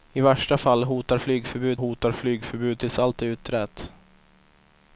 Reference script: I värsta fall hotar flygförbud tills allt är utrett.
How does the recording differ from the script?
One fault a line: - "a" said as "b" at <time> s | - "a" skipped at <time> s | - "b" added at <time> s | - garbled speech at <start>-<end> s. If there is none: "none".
- "hotar flygförbud" added at 1.7 s